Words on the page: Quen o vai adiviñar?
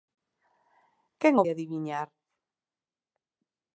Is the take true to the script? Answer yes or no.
no